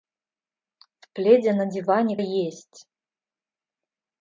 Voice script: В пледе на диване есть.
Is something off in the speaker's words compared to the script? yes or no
no